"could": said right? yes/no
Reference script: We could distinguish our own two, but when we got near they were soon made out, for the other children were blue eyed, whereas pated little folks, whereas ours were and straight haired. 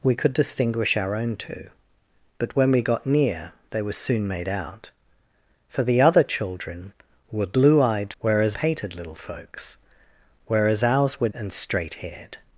yes